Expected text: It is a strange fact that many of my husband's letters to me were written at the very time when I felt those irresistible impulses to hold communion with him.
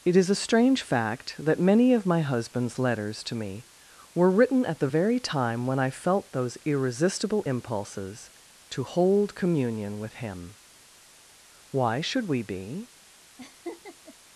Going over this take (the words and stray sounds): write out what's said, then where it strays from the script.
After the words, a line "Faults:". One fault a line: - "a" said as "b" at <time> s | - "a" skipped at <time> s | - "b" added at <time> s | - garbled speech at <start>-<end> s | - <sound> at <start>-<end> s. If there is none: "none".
It is a strange fact that many of my husband's letters to me were written at the very time when I felt those irresistible impulses to hold communion with him. Why should we be
Faults:
- "Why should we be" added at 11.7 s
- laugh at 13.4-14.2 s